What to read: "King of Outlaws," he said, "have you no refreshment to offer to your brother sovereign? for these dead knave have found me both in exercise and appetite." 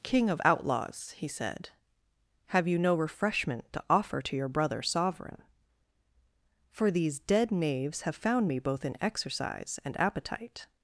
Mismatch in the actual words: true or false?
true